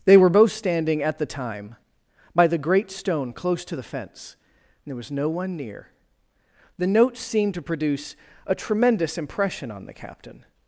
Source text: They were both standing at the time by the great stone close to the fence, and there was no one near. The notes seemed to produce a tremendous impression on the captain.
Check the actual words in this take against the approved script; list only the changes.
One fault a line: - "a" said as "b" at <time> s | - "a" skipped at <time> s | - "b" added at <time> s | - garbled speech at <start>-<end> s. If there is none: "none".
none